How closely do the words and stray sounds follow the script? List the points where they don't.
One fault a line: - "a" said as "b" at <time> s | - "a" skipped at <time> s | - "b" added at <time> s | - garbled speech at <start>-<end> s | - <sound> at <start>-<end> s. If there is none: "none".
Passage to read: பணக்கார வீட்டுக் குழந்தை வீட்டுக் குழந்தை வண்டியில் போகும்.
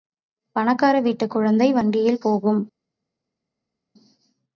- "வீட்டுக் குழந்தை" skipped at 1.7 s